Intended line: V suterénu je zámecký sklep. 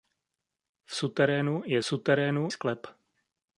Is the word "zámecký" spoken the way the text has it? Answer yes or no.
no